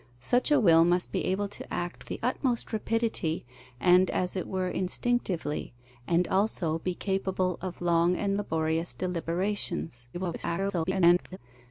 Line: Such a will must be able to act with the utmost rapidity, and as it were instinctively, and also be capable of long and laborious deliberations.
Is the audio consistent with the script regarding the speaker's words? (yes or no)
no